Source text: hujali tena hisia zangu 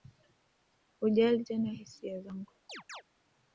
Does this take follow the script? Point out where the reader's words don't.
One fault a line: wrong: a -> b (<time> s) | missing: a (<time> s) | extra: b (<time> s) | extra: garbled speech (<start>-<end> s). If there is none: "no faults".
no faults